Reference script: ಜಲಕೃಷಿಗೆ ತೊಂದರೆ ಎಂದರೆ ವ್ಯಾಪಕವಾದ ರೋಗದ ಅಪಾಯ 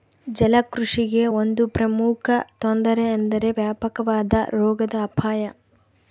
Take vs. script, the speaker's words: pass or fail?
fail